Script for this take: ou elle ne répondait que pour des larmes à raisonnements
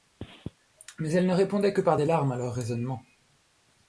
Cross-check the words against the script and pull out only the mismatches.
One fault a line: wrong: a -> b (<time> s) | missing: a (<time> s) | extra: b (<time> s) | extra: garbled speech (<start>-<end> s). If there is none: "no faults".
wrong: ou -> mais (1.0 s)
wrong: pour -> par (1.8 s)
extra: leurs (2.4 s)